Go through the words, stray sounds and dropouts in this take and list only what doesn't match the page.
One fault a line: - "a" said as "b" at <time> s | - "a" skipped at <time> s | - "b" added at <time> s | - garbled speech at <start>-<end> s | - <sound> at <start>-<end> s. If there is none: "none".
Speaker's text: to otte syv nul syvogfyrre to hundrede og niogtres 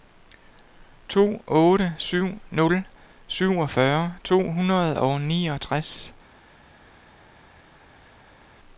none